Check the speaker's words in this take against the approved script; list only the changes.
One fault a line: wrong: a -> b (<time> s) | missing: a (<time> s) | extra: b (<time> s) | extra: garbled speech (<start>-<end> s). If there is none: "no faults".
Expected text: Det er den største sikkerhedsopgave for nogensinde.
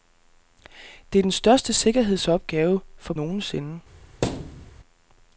no faults